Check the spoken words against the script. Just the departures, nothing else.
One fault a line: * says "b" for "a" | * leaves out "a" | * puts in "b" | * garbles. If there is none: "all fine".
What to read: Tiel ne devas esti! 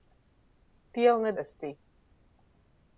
* leaves out "devas"